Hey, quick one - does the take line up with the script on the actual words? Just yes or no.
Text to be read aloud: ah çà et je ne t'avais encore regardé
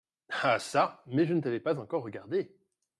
no